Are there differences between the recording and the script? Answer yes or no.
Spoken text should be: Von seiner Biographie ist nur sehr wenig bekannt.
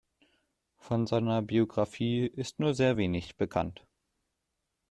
no